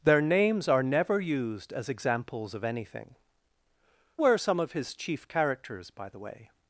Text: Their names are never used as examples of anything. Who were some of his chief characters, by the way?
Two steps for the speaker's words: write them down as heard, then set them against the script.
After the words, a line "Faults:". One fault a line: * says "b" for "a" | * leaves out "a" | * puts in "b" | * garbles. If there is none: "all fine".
Their names are never used as examples of anything. Were some of his chief characters, by the way?
Faults:
* leaves out "Who"